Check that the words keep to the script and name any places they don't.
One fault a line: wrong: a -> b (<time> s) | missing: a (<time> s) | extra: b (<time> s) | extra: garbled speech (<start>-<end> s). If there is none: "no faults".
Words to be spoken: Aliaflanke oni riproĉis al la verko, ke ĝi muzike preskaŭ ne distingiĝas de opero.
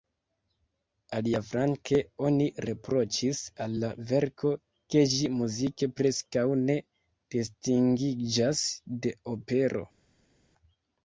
no faults